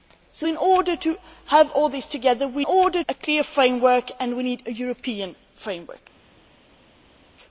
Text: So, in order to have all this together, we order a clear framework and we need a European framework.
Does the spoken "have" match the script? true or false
true